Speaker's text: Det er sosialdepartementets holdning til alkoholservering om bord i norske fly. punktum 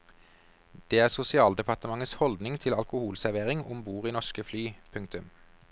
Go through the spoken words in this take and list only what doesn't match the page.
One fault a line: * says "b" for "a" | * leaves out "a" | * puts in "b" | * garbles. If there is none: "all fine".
all fine